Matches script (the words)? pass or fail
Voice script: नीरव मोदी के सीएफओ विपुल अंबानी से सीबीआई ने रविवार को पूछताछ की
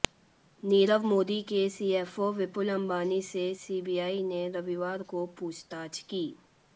pass